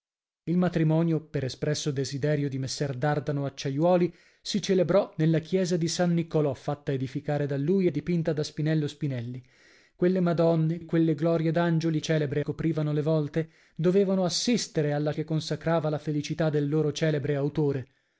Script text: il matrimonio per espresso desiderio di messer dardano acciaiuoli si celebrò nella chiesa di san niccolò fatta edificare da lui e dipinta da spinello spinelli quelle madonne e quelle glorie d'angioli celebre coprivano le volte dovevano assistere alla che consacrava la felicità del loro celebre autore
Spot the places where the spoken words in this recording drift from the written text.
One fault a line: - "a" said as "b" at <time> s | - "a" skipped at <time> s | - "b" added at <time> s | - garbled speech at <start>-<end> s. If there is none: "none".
none